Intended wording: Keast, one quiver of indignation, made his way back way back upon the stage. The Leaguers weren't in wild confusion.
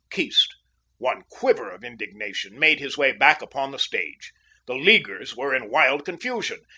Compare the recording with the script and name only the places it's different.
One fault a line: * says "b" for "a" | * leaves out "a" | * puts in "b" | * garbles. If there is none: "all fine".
* leaves out "way back"
* says "were" for "weren't"